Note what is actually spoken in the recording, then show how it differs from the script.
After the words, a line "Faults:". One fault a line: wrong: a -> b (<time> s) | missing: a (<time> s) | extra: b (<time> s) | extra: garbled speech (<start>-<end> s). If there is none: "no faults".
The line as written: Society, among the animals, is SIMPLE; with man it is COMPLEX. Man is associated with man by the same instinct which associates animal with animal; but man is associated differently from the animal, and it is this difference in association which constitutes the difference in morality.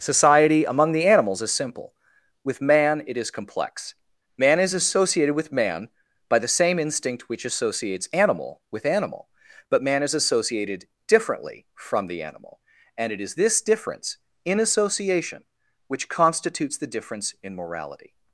Society, among the animals, is SIMPLE; with man it is COMPLEX. Man is associated with man by the same instinct which associates animal with animal; but man is associated differently from the animal, and it is this difference in association which constitutes the difference in morality.
Faults:
no faults